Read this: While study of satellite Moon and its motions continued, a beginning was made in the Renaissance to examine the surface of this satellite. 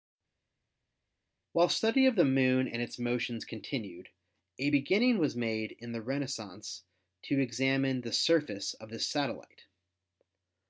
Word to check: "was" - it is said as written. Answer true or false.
true